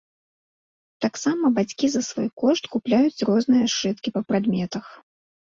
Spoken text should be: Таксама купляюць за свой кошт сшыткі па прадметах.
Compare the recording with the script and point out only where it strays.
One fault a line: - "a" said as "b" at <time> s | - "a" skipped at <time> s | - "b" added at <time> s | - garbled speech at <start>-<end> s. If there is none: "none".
- "купляюць" said as "бацькі" at 1.6 s
- "купляюць розныя" added at 2.8 s